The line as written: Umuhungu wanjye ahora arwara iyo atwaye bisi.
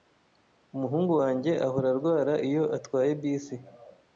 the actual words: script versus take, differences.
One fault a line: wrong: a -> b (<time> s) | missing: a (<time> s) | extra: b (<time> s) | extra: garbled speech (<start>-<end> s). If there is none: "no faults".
no faults